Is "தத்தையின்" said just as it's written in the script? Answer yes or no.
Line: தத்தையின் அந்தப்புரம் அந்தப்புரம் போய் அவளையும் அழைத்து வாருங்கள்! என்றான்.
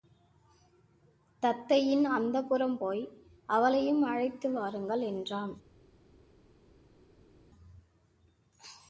yes